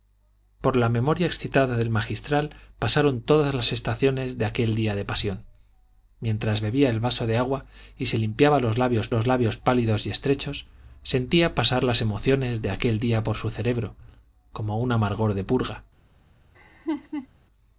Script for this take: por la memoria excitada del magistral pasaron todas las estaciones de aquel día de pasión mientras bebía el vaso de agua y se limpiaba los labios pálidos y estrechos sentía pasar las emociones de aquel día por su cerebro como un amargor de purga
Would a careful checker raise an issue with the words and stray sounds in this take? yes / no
yes